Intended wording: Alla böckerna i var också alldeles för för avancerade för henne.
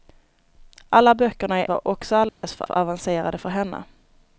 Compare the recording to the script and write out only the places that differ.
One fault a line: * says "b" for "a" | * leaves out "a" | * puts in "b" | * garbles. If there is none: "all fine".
all fine